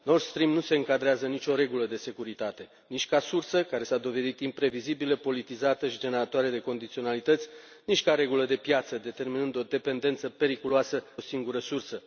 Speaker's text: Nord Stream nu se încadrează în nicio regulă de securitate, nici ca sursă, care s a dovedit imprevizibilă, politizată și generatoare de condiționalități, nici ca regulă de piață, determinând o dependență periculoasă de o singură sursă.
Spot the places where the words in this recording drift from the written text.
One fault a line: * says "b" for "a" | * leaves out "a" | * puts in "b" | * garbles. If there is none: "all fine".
* leaves out "de"